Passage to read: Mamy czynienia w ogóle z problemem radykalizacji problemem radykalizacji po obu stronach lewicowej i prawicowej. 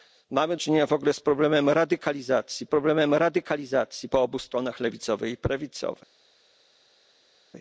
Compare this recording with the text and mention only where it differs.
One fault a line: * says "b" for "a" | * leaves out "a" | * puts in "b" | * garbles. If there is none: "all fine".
all fine